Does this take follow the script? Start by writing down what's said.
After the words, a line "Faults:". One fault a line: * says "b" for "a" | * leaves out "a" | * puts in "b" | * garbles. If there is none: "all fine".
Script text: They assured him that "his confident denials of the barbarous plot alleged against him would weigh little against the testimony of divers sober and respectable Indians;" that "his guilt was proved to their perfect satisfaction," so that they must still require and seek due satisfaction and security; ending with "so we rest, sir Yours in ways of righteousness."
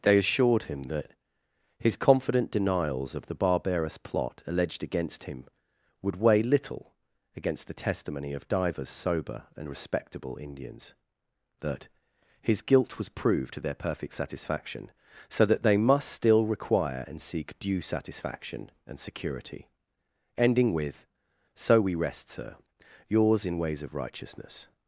They assured him that "his confident denials of the barbarous plot alleged against him would weigh little against the testimony of divers sober and respectable Indians;" that "his guilt was proved to their perfect satisfaction," so that they must still require and seek due satisfaction and security; ending with "so we rest, sir Yours in ways of righteousness."
Faults:
all fine